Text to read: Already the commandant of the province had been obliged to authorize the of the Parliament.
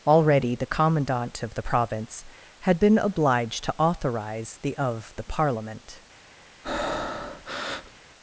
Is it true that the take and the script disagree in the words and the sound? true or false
true